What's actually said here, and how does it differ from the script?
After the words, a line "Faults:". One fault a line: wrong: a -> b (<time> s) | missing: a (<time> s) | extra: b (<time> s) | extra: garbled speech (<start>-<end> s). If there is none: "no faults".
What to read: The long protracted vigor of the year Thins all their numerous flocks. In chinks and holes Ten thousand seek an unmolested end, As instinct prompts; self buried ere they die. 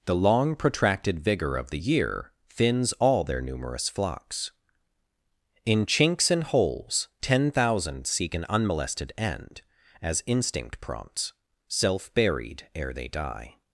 The long protracted vigor of the year Thins all their numerous flocks. In chinks and holes Ten thousand seek an unmolested end, As instinct prompts; self buried ere they die.
Faults:
no faults